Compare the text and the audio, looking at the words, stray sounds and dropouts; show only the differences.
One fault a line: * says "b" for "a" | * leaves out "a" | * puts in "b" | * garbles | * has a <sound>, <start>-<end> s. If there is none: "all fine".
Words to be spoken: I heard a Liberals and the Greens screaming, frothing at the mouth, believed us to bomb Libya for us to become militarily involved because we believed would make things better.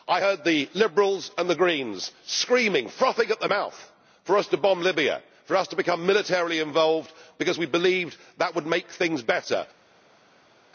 * says "the" for "a"
* says "for" for "believed"
* puts in "that"